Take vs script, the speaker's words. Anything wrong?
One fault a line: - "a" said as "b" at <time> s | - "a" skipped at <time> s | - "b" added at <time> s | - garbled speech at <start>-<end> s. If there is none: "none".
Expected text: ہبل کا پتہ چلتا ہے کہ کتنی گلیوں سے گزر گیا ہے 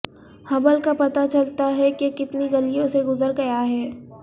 none